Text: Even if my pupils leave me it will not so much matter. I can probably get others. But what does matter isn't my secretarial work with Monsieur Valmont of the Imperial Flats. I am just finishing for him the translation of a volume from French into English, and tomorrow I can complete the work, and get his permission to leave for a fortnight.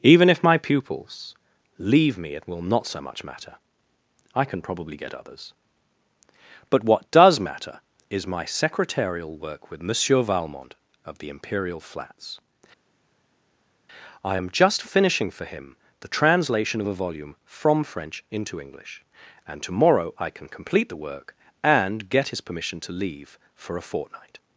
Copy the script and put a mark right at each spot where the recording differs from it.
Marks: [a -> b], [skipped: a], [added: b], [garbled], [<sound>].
Even if my pupils leave me it will not so much matter. I can probably get others. But what does matter [isn't -> is] my secretarial work with Monsieur Valmont of the Imperial Flats. I am just finishing for him the translation of a volume from French into English, and tomorrow I can complete the work, and get his permission to leave for a fortnight.